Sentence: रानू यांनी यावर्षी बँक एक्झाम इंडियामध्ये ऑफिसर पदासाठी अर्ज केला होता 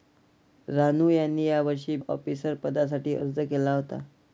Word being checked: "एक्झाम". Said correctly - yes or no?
no